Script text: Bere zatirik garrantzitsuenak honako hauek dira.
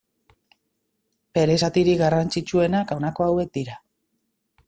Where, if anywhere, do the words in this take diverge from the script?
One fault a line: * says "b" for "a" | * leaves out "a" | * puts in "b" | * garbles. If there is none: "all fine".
all fine